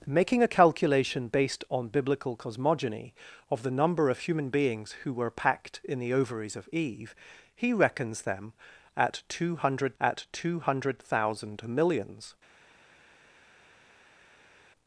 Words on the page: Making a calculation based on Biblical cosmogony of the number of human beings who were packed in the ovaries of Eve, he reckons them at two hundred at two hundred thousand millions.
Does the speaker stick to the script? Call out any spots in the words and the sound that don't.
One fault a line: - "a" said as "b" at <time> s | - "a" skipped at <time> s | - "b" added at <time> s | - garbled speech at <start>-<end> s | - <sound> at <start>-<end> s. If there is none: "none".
none